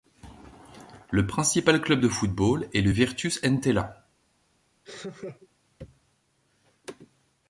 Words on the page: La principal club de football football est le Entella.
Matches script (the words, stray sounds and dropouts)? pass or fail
fail